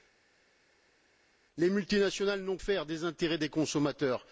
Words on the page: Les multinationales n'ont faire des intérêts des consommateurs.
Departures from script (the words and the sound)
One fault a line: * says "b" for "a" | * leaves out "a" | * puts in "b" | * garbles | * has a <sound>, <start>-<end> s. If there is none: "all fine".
all fine